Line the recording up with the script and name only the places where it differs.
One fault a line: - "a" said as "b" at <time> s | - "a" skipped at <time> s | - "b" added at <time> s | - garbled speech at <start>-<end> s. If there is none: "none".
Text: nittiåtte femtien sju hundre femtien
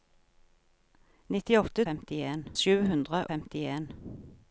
none